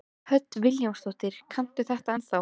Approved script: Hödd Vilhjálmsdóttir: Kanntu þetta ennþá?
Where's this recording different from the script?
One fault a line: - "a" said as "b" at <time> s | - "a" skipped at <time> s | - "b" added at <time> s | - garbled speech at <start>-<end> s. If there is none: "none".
none